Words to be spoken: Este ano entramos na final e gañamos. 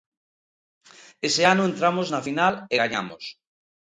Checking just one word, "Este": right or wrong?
wrong